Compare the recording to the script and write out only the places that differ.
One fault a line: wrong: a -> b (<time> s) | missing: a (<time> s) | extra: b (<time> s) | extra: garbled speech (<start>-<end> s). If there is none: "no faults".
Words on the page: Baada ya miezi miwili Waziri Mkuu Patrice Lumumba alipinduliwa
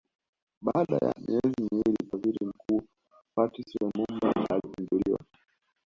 no faults